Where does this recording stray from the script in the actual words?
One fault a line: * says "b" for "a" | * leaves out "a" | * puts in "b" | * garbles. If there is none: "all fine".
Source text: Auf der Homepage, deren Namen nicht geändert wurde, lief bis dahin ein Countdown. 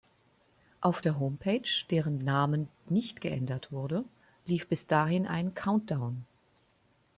all fine